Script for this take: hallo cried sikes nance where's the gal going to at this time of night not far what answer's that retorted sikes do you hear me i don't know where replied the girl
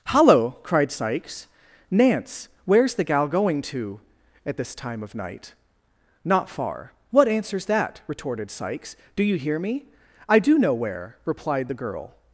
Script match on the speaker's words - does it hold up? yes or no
no